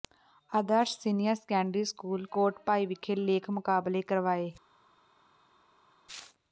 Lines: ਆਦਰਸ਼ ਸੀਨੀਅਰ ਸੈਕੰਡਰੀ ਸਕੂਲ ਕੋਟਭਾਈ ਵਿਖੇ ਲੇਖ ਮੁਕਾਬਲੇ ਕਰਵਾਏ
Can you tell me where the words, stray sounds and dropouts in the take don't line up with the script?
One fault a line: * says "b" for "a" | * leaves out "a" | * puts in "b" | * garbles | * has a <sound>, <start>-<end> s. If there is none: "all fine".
all fine